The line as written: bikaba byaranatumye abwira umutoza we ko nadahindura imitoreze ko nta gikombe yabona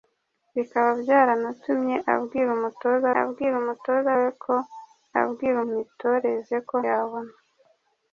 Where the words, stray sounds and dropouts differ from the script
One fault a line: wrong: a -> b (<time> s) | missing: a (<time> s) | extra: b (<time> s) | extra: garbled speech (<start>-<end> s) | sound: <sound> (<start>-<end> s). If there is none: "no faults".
extra: abwira umutoza (3.2 s)
wrong: nadahindura -> abwira (5.2 s)
missing: nta gikombe (6.7 s)